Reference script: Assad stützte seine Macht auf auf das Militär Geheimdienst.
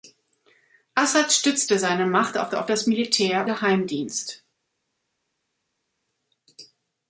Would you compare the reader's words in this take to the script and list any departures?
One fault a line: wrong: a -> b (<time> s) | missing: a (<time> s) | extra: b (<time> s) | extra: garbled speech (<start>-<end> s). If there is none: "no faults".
no faults